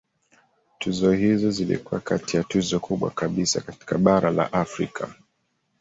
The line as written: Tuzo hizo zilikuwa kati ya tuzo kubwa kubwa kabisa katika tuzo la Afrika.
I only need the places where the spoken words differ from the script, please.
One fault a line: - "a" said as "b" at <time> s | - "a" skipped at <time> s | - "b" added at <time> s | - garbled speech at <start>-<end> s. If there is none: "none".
- "kubwa" skipped at 3.1 s
- "tuzo" said as "bara" at 4.0 s